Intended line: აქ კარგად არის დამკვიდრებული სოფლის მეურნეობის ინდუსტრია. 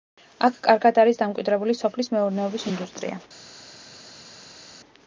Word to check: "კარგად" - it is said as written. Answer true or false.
true